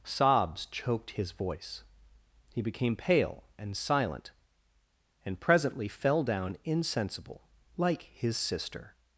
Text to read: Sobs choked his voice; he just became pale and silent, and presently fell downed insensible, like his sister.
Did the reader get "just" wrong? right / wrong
wrong